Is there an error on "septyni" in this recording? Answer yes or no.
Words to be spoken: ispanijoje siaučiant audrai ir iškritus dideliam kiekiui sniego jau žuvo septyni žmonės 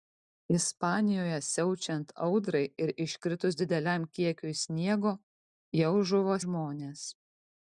yes